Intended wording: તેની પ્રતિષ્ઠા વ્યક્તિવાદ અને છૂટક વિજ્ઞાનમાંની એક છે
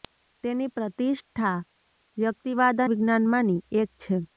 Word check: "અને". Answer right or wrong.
wrong